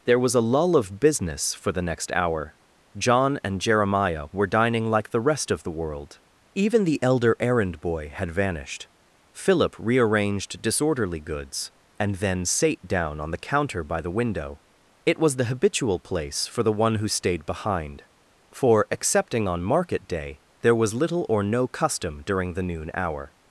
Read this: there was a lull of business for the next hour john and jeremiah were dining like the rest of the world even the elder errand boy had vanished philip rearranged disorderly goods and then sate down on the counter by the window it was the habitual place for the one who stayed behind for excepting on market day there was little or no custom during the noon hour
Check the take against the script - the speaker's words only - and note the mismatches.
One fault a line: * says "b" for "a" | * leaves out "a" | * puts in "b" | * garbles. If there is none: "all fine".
all fine